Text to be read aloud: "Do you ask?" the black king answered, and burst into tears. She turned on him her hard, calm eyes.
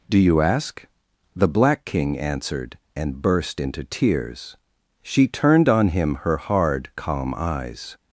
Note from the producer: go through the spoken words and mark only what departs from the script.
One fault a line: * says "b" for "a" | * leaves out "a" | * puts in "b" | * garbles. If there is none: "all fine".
all fine